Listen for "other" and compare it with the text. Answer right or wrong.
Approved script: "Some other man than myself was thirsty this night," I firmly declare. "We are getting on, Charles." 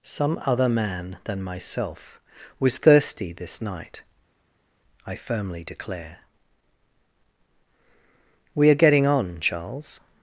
right